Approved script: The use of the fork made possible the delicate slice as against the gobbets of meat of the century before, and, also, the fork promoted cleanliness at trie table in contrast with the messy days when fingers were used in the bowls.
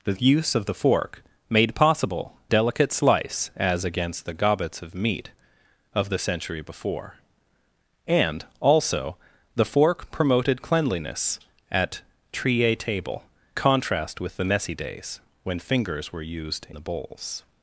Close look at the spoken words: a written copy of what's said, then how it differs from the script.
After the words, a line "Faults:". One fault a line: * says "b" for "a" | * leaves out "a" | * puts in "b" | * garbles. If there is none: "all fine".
The use of the fork made possible delicate slice as against the gobbets of meat of the century before, and, also, the fork promoted cleanliness at trie table contrast with the messy days when fingers were used the bowls.
Faults:
* leaves out "the"
* leaves out "in"
* leaves out "in"